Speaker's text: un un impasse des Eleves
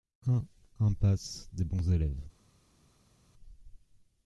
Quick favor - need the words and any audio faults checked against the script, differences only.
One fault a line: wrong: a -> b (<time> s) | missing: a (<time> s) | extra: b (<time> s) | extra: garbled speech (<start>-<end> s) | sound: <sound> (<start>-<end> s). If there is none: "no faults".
missing: un (0.5 s)
extra: Bons (1.6 s)